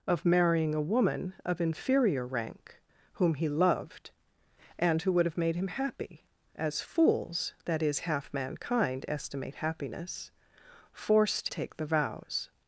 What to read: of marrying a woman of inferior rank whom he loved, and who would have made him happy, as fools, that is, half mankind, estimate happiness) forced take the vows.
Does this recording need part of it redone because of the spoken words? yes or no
no